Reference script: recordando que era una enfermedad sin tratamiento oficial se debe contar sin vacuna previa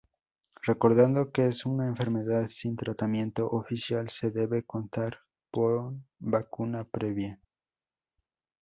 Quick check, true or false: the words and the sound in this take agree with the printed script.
false